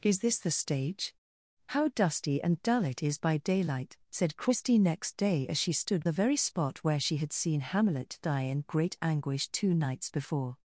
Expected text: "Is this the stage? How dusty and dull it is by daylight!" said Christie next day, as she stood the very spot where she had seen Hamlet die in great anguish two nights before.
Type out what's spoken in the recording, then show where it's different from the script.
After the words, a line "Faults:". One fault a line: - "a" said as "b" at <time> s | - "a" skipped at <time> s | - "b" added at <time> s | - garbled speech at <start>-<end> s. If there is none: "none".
"Is this the stage? How dusty and dull it is by daylight!" said Christie next day, as she stood the very spot where she had seen Hamlet die in great anguish two nights before.
Faults:
none